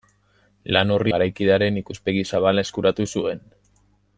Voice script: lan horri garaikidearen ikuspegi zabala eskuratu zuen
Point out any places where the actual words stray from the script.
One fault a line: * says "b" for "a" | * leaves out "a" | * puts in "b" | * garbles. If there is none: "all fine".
all fine